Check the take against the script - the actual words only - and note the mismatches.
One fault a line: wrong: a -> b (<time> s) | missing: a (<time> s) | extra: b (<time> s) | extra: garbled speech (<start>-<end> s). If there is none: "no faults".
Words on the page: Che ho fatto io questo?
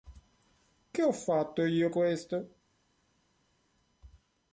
no faults